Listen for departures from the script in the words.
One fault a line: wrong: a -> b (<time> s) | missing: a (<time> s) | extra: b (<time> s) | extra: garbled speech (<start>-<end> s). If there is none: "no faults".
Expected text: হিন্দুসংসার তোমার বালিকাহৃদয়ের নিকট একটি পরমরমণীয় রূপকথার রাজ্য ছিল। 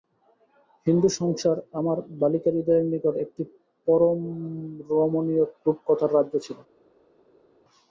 wrong: তোমার -> আমার (1.8 s)